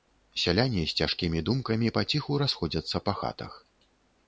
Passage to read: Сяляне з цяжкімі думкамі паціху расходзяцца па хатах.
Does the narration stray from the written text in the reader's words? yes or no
no